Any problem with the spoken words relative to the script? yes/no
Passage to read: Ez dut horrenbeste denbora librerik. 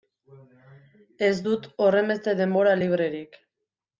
no